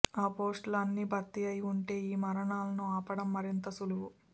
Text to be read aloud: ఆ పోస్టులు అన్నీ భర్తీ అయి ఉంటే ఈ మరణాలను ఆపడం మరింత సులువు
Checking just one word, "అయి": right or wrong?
right